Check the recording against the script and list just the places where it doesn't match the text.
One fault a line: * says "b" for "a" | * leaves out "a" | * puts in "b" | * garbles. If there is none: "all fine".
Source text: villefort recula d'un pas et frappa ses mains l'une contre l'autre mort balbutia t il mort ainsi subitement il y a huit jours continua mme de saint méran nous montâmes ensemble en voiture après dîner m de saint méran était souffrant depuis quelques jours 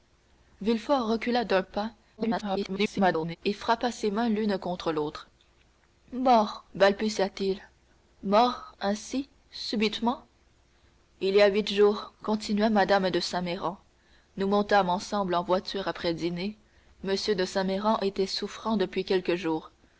* garbles